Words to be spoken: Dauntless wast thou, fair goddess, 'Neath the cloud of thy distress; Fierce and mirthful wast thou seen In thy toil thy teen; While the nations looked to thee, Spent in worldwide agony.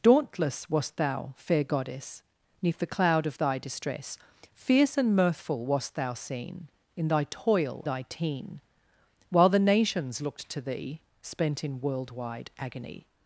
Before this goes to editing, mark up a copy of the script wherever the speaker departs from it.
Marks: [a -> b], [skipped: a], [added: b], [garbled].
Dauntless wast thou, fair goddess, 'Neath the cloud of thy distress; Fierce and mirthful wast thou seen In thy toil thy teen; While the nations looked to thee, Spent in worldwide agony.